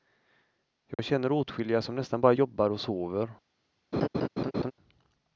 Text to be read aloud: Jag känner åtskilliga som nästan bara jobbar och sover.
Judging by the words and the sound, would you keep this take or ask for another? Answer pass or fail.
fail